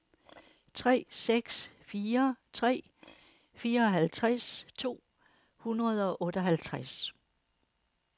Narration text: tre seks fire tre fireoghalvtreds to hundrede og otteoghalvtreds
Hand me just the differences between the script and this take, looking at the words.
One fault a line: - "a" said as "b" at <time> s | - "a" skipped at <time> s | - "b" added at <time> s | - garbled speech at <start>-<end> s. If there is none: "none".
none